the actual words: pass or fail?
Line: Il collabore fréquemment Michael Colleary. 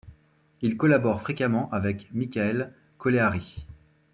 fail